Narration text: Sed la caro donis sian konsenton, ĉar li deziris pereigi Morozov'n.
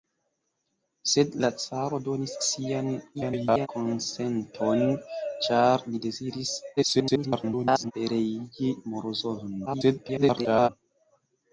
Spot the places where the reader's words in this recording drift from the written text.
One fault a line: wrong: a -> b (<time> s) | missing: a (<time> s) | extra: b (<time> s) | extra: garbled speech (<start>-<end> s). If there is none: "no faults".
extra: garbled speech (3.1-3.7 s)
extra: garbled speech (6.8-7.9 s)
extra: garbled speech (9.7-10.7 s)